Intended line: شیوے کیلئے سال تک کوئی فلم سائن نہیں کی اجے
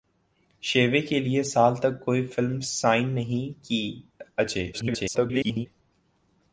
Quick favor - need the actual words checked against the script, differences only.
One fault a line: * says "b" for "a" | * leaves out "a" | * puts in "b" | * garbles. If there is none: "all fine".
* garbles